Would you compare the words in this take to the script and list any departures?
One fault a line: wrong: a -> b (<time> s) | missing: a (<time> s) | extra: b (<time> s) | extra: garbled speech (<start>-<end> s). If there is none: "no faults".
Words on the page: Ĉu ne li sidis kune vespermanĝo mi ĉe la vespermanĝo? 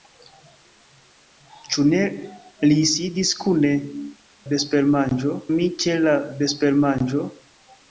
no faults